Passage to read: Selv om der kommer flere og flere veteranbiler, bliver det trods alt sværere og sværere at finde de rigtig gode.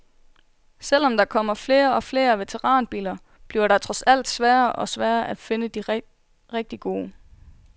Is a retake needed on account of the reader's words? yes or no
no